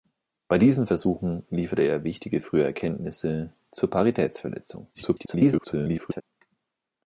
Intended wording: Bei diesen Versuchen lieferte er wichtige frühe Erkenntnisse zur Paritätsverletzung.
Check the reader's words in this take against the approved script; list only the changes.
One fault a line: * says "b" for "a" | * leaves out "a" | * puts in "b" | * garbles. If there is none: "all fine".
* garbles